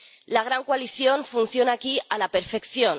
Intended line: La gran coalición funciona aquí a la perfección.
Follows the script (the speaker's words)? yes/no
yes